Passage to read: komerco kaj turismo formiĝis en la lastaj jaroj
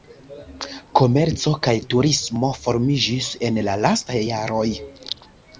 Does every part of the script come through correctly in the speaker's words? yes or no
yes